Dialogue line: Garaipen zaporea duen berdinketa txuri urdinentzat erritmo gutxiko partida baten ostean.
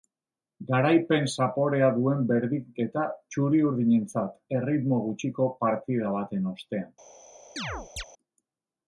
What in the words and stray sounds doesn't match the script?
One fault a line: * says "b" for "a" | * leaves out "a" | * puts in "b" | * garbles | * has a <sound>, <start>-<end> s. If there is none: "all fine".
* has a chirp, 7.6-8.0 s